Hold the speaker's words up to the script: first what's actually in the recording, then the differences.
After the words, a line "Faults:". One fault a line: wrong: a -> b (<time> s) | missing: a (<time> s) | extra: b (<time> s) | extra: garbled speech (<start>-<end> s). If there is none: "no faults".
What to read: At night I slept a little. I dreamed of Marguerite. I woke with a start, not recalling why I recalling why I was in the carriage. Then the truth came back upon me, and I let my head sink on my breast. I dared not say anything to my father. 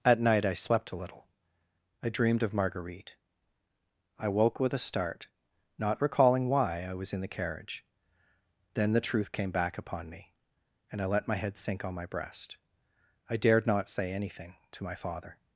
At night I slept a little. I dreamed of Marguerite. I woke with a start, not recalling why I was in the carriage. Then the truth came back upon me, and I let my head sink on my breast. I dared not say anything to my father.
Faults:
missing: recalling why I (7.0 s)